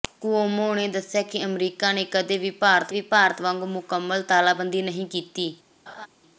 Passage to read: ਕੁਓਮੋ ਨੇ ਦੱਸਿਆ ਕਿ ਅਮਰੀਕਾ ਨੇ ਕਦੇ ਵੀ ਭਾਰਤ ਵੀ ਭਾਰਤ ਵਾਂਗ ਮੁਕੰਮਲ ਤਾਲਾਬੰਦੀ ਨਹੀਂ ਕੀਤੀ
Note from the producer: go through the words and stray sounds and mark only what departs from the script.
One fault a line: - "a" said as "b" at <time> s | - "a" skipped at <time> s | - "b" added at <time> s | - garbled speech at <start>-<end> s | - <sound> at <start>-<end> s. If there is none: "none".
- laugh at 5.9-6.1 s